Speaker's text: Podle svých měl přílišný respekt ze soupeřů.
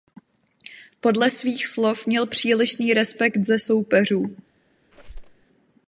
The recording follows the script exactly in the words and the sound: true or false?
false